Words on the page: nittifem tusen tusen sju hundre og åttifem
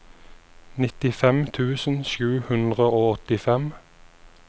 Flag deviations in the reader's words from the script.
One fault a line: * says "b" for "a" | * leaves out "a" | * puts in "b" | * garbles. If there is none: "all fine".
* leaves out "tusen"